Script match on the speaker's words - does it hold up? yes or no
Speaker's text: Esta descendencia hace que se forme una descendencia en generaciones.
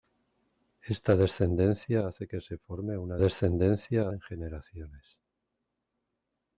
yes